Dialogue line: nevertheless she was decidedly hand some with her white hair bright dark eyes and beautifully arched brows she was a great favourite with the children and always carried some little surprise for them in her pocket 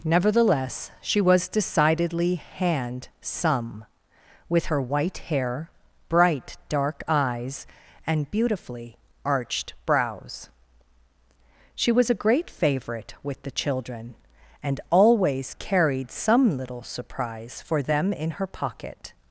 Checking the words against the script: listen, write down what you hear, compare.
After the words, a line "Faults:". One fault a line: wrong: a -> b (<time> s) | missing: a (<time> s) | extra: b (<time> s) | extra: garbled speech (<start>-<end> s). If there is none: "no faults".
nevertheless she was decidedly hand some with her white hair bright dark eyes and beautifully arched brows she was a great favourite with the children and always carried some little surprise for them in her pocket
Faults:
no faults